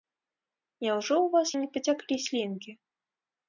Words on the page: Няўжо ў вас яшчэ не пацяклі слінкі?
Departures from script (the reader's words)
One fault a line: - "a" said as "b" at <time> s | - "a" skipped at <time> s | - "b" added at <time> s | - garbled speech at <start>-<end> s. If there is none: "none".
- "яшчэ" skipped at 1.5 s